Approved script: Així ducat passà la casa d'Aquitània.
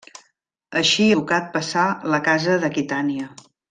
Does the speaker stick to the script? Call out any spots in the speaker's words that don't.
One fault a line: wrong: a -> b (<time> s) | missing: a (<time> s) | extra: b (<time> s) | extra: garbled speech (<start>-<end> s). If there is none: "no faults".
no faults